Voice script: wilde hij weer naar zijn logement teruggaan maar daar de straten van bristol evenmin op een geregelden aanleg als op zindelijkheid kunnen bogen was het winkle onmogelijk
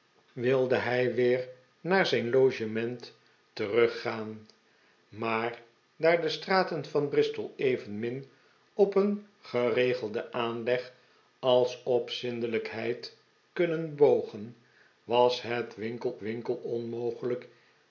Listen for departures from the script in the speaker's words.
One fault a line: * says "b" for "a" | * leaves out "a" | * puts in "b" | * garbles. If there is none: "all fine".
* puts in "winkle"